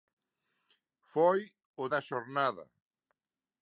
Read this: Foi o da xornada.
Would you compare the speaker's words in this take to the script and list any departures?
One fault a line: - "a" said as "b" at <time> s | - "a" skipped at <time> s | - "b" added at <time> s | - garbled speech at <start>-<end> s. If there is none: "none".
none